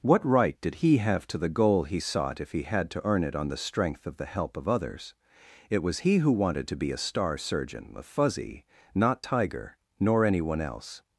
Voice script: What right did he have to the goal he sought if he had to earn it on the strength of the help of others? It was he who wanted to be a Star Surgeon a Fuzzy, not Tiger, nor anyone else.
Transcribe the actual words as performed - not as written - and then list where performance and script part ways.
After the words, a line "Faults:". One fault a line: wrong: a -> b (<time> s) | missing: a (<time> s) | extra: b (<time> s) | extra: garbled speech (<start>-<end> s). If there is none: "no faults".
What right did he have to the goal he sought if he had to earn it on the strength of the help of others? It was he who wanted to be a Star Surgeon a Fuzzy, not Tiger, nor anyone else.
Faults:
no faults